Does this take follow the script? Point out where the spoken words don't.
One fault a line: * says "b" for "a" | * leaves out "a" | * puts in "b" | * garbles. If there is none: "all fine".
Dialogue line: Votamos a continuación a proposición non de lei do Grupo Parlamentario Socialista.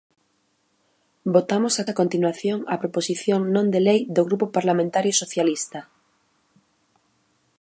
* puts in "a"